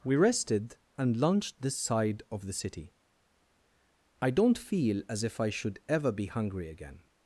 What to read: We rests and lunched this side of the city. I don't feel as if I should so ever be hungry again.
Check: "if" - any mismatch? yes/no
no